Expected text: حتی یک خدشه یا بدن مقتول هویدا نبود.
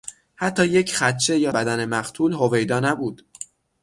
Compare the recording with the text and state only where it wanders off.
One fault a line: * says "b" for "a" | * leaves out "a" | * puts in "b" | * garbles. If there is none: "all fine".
all fine